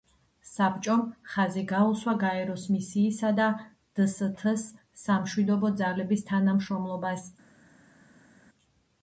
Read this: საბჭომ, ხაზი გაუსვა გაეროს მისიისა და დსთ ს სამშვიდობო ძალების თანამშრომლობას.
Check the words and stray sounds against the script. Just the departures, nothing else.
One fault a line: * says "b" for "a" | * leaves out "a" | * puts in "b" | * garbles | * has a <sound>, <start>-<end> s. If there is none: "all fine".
all fine